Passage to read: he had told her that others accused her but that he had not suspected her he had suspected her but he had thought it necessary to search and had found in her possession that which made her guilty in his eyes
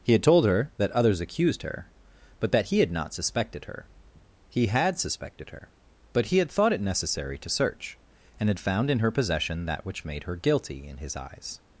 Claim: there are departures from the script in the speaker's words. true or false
false